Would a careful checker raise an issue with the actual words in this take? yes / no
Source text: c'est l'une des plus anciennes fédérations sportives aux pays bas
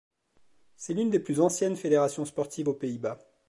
no